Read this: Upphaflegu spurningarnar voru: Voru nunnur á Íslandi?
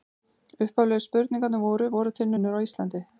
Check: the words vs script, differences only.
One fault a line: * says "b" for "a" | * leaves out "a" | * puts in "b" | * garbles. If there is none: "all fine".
* puts in "til"